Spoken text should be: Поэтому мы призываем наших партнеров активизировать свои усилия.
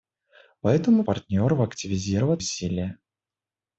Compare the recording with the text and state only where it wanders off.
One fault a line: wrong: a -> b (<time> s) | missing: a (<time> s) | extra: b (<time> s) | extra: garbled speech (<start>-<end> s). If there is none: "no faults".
missing: призываем наших (1.0 s)
missing: свои (2.4 s)